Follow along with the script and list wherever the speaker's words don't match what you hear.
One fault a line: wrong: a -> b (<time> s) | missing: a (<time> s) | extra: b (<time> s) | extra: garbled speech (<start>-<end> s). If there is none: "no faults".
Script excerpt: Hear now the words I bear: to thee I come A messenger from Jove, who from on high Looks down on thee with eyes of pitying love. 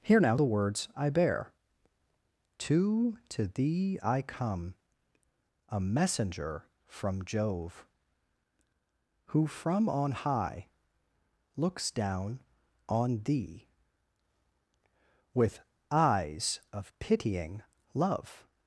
extra: to (3.3 s)